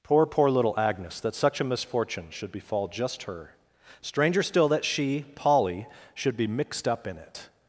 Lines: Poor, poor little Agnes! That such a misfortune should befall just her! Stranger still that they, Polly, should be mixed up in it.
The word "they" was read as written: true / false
false